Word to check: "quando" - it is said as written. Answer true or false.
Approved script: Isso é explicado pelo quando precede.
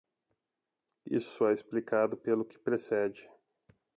false